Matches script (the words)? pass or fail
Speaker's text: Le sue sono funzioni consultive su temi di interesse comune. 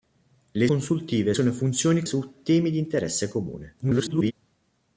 fail